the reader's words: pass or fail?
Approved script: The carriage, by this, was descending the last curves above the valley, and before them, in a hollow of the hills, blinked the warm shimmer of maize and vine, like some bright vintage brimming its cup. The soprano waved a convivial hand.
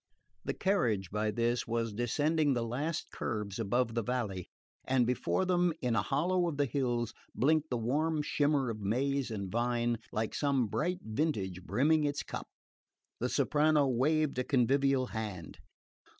pass